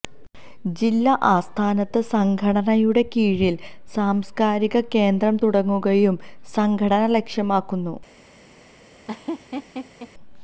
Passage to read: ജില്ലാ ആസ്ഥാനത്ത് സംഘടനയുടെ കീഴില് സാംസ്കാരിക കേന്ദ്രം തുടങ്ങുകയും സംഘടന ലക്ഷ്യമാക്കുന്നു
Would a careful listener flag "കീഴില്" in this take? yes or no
no